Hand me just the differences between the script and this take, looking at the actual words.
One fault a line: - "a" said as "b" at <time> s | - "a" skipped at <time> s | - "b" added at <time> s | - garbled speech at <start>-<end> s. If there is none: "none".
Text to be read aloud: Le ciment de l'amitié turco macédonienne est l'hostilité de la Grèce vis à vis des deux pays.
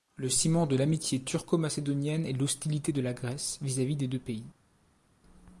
none